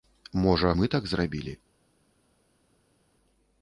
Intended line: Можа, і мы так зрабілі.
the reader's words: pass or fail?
pass